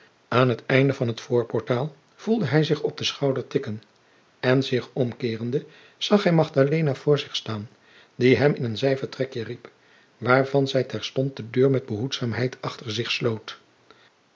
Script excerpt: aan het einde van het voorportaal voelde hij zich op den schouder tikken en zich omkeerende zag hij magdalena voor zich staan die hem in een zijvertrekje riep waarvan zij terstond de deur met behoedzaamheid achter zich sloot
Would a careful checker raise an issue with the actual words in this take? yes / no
no